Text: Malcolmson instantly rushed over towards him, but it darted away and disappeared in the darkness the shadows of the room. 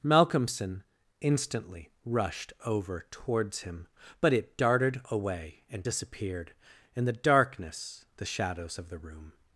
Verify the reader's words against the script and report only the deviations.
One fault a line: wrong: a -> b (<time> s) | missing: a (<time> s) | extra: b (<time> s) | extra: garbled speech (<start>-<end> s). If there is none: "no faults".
no faults